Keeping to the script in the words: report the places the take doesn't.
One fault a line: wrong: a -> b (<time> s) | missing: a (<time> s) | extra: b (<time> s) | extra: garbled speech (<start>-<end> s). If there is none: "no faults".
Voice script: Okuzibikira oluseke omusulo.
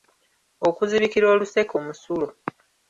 no faults